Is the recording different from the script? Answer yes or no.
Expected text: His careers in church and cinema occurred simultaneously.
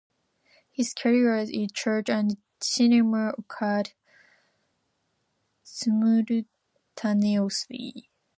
no